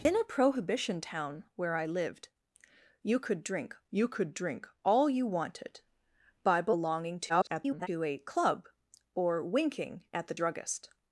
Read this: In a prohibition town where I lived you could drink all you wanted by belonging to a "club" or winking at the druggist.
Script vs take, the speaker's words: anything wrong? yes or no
yes